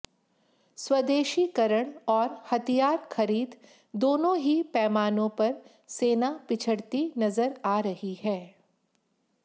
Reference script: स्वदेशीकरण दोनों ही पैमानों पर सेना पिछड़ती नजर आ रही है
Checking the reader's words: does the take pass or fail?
fail